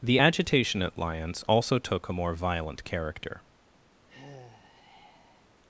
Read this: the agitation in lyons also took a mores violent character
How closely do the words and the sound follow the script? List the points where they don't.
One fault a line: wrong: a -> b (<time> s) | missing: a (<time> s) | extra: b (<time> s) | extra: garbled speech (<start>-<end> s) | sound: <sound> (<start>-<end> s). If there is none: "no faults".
wrong: in -> at (0.8 s)
wrong: mores -> more (2.1 s)
sound: sigh (4.1-5.6 s)